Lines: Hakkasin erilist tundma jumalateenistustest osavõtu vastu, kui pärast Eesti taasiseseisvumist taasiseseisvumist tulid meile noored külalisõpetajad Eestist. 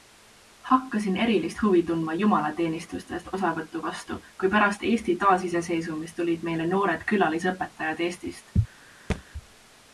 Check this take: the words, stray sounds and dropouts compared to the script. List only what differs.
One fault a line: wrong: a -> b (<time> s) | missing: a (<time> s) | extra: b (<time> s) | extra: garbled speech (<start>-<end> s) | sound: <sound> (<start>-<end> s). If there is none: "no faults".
extra: huvi (1.6 s)
missing: taasiseseisvumist (6.2 s)
sound: thud (9.1-9.2 s)